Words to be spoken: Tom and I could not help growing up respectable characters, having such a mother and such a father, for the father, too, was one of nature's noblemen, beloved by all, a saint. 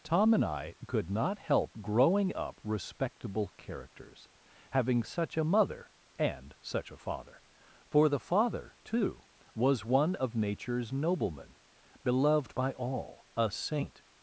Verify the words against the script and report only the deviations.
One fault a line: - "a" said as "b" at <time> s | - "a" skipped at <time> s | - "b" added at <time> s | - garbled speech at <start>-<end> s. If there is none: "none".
none